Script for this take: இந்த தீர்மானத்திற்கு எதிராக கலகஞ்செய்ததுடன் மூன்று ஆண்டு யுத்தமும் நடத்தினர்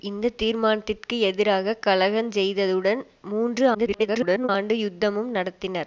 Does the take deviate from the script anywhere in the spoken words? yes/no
yes